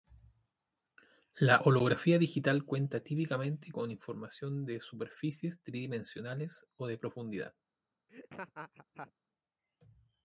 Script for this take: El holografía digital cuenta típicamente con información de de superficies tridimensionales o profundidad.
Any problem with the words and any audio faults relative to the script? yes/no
yes